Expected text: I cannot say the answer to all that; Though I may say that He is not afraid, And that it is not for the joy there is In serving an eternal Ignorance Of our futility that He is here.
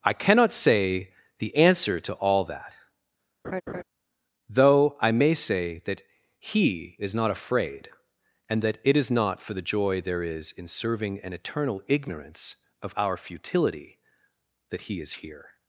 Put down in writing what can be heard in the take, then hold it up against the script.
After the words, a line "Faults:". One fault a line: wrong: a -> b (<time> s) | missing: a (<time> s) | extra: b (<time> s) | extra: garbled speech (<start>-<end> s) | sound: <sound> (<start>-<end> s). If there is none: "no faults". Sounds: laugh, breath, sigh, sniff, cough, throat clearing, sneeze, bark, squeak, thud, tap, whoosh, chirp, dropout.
I cannot say the answer to all that; Though I may say that He is not afraid, And that it is not for the joy there is In serving an eternal Ignorance Of our futility that He is here.
Faults:
sound: laugh (3.4-3.8 s)